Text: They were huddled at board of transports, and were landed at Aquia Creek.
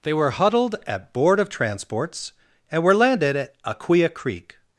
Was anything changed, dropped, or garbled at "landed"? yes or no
no